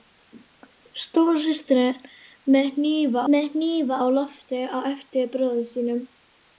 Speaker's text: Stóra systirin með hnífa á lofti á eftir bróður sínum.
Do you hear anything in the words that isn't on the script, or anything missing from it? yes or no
yes